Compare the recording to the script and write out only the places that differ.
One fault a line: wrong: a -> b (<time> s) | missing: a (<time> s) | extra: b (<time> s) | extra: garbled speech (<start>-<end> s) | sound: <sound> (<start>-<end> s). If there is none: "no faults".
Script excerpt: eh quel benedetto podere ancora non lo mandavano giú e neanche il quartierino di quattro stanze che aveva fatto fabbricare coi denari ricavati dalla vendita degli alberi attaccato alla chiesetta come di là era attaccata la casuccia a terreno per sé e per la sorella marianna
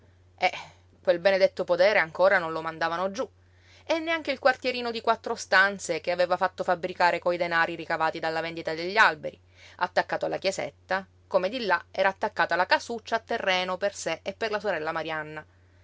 no faults